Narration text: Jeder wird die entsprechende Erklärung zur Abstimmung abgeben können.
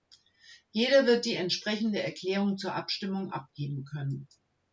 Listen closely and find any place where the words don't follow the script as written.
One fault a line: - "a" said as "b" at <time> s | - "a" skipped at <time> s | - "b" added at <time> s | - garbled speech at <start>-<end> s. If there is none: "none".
none